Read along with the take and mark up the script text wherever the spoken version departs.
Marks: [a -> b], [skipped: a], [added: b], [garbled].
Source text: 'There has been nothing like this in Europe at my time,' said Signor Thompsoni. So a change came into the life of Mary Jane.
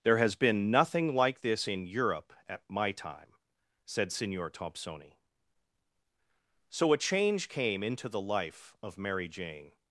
'There has been nothing like this in Europe at my time,' said Signor Thompsoni. So a change came into the life of Mary Jane.